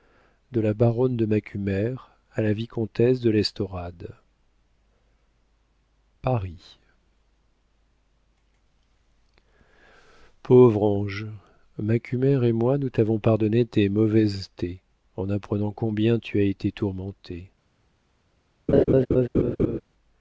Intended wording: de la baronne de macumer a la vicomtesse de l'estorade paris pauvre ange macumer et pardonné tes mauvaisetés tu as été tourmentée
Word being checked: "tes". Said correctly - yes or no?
yes